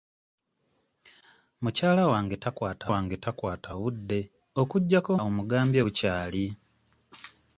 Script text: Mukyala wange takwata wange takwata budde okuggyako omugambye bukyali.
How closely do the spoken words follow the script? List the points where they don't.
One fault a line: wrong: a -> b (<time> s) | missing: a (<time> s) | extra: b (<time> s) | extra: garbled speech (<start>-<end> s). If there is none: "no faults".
no faults